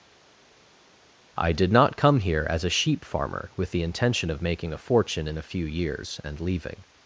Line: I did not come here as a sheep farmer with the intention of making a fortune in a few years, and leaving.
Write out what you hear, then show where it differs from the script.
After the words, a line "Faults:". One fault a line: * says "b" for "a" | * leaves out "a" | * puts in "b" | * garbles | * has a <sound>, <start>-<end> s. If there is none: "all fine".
I did not come here as a sheep farmer with the intention of making a fortune in a few years, and leaving.
Faults:
all fine